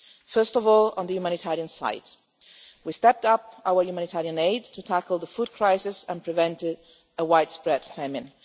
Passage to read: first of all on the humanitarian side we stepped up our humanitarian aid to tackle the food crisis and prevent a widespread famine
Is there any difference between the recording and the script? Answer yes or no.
no